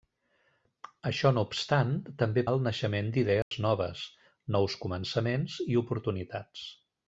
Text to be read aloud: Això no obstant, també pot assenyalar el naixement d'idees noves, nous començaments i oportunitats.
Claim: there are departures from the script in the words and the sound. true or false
true